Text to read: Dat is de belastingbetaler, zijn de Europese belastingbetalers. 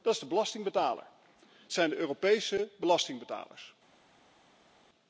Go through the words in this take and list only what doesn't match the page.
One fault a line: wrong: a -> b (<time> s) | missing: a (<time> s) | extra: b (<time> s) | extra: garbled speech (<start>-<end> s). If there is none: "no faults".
no faults